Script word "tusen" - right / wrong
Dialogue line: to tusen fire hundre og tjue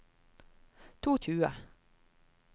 wrong